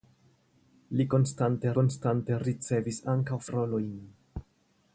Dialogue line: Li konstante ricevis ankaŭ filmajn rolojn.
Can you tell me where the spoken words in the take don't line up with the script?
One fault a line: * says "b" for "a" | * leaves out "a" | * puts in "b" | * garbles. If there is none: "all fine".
* puts in "konstante"
* leaves out "filmajn"